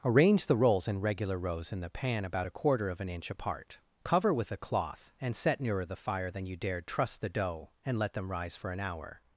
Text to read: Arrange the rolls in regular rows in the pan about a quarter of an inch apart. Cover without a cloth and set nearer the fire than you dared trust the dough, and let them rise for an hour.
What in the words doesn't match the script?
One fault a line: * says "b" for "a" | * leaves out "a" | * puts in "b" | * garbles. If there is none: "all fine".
* says "with" for "without"